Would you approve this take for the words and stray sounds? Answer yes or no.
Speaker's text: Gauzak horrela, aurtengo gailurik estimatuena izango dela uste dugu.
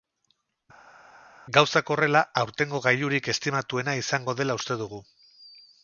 yes